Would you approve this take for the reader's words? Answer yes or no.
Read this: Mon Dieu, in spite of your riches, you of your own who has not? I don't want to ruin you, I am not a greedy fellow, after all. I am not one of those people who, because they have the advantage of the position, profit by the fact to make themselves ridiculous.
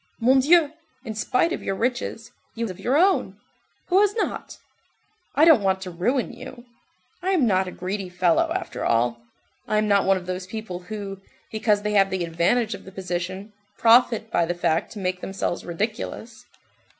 yes